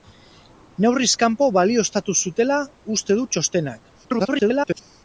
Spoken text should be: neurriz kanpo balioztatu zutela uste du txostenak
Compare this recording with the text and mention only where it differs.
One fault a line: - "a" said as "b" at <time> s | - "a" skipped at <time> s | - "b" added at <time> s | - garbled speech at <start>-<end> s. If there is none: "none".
- garbled speech at 4.0-4.8 s